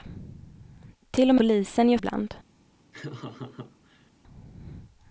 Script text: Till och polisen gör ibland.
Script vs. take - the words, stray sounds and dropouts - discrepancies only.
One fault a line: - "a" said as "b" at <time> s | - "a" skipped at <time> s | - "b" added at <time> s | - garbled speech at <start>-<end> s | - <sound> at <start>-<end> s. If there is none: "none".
- laugh at 2.9-4.1 s